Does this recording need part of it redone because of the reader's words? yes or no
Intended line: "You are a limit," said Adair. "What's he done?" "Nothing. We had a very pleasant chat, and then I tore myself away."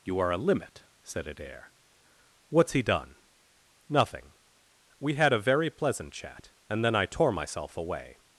no